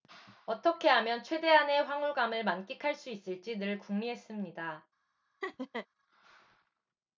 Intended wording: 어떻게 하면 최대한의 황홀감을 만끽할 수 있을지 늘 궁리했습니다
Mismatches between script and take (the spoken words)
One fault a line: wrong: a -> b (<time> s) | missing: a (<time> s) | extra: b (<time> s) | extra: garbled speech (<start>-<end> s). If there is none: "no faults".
no faults